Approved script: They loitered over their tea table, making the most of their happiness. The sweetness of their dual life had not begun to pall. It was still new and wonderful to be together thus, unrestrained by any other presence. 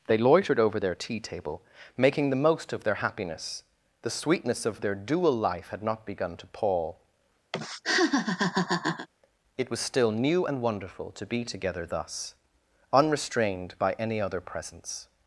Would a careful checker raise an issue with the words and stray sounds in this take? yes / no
yes